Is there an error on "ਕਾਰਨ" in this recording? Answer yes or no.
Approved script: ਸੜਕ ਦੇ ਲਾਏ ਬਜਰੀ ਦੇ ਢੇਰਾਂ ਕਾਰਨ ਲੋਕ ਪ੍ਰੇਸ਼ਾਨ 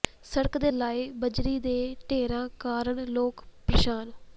no